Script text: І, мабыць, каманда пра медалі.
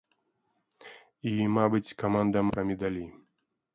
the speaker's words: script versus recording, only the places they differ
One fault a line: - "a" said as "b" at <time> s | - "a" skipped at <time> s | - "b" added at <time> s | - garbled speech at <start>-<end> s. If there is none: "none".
none